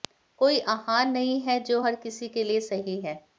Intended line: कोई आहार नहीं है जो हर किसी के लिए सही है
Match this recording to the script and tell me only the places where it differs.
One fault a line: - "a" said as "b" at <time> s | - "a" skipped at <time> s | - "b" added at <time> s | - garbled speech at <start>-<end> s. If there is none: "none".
none